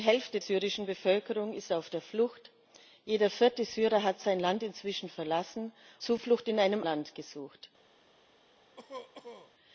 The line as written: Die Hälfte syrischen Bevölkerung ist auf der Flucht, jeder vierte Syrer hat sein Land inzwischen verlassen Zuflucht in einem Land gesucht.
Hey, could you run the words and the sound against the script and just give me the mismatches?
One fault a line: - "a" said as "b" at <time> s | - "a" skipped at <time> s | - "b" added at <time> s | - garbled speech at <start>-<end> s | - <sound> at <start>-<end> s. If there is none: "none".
- cough at 8.8-9.5 s